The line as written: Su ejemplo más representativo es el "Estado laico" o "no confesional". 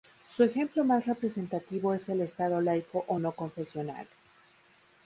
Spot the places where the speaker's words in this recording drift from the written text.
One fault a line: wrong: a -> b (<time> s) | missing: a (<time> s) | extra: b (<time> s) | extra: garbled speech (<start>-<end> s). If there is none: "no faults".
no faults